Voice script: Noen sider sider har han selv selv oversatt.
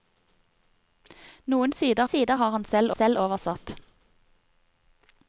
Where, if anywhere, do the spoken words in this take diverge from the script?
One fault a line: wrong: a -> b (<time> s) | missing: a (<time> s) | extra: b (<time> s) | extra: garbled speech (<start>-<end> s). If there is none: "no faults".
no faults